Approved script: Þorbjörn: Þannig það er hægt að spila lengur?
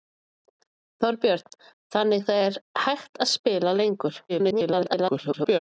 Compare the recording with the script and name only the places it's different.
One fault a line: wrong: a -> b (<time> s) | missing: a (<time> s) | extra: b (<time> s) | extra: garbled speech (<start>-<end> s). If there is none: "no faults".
extra: garbled speech (4.3-5.6 s)